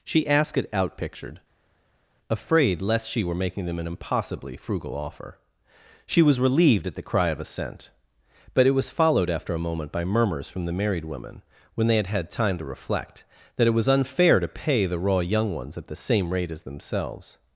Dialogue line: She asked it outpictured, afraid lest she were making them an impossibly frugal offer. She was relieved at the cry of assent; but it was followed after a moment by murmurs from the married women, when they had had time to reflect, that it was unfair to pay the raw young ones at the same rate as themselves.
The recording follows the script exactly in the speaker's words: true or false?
true